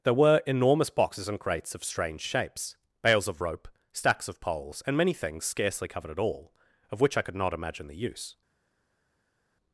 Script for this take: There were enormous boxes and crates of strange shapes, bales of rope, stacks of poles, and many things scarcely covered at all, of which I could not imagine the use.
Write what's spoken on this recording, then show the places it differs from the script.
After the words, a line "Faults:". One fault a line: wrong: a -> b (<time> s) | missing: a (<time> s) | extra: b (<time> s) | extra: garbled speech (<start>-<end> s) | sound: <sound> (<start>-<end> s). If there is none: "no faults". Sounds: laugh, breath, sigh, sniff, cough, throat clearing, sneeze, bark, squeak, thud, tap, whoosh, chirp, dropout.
There were enormous boxes and crates of strange shapes, bales of rope, stacks of poles, and many things scarcely covered at all, of which I could not imagine the use.
Faults:
no faults